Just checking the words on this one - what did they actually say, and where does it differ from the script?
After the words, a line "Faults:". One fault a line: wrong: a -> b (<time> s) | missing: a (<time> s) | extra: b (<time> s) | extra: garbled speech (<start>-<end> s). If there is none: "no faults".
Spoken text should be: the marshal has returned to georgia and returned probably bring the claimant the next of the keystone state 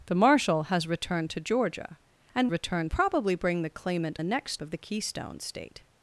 the marshal has returned to georgia and returned probably bring the claimant the next of the keystone state
Faults:
no faults